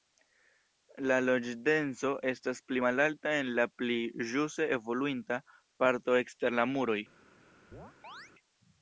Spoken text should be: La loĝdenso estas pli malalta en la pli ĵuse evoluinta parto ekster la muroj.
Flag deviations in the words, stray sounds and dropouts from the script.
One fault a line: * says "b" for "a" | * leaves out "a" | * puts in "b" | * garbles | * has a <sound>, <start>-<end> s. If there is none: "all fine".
* has a chirp, 7.7-8.3 s